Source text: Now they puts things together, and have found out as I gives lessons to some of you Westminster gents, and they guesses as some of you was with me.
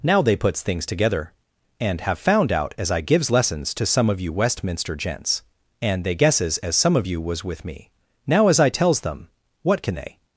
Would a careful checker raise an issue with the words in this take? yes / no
yes